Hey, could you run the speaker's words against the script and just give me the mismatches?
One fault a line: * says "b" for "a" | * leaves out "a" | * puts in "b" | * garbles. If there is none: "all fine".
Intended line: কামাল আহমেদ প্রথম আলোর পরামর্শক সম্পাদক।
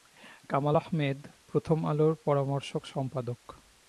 all fine